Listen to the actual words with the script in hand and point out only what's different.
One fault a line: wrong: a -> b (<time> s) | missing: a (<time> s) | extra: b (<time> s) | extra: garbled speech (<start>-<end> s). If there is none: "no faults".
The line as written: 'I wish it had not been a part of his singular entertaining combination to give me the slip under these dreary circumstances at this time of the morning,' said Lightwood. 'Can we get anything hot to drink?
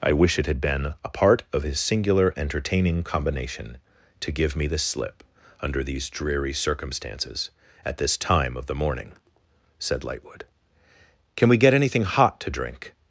missing: not (0.6 s)